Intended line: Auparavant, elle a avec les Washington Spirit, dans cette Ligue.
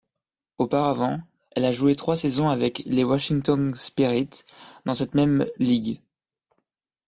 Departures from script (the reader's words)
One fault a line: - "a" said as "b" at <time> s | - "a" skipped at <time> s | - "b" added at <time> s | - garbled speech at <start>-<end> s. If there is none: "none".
- "joué trois saisons" added at 1.7 s
- "même" added at 5.1 s